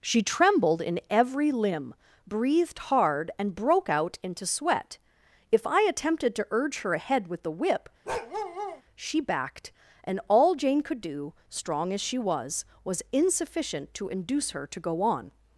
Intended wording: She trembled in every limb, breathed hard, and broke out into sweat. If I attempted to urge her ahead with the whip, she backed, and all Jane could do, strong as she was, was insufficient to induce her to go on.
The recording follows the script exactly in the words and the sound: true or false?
false